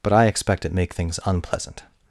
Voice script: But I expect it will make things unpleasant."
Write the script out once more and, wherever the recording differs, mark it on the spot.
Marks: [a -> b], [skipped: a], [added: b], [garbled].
But I expect it [skipped: will] make things unpleasant."